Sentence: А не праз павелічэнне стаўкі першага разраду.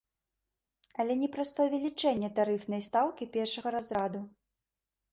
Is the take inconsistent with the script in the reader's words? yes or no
yes